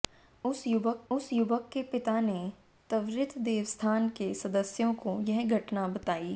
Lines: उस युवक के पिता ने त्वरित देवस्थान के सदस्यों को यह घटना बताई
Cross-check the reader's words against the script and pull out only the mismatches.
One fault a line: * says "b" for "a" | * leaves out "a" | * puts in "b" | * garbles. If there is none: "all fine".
* puts in "उस युवक"